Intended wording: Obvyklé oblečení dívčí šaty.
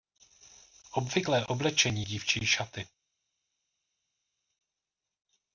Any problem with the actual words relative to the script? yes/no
no